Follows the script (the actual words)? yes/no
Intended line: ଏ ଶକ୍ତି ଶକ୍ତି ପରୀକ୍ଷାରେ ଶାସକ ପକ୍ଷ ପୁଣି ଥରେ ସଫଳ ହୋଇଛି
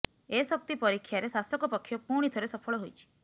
no